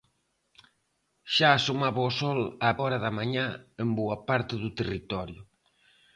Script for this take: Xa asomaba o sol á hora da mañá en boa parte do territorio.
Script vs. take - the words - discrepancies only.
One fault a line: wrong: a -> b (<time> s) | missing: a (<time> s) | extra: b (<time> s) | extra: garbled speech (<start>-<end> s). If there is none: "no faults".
no faults